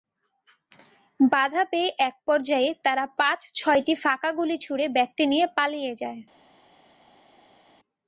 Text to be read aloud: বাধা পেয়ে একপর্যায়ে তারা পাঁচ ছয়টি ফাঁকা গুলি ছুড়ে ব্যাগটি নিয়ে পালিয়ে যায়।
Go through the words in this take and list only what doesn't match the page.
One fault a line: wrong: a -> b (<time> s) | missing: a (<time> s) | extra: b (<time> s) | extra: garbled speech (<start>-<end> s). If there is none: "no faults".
no faults